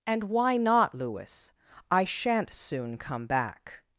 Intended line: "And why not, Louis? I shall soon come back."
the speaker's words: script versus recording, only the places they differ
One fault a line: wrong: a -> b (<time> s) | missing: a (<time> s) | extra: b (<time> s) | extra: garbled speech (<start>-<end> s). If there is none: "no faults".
wrong: shall -> shan't (2.0 s)